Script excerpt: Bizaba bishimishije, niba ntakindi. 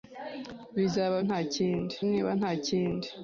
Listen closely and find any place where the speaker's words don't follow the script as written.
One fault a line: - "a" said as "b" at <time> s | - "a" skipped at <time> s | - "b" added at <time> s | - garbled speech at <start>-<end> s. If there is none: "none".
- "bishimishije" said as "ntakindi" at 1.3 s